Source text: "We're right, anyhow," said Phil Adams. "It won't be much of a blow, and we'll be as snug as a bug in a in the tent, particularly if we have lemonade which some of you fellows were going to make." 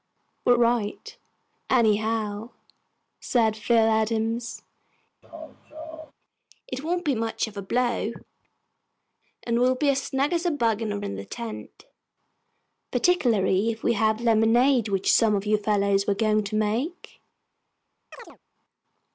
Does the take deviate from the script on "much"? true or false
false